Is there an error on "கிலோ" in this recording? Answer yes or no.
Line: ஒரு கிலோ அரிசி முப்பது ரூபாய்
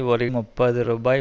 yes